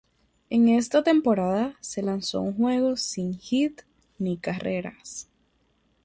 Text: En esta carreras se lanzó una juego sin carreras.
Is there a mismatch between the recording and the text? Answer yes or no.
yes